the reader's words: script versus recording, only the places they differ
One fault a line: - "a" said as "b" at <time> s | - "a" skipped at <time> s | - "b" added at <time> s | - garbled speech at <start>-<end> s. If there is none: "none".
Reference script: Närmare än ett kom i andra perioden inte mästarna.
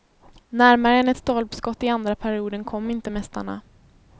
- "kom" said as "stolpskott" at 1.1 s
- "kom" added at 2.6 s